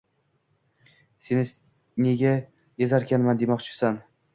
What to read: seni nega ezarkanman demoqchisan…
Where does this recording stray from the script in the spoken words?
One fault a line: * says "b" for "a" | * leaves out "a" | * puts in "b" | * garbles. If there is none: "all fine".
all fine